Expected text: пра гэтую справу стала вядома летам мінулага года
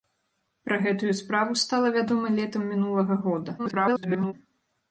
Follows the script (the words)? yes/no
no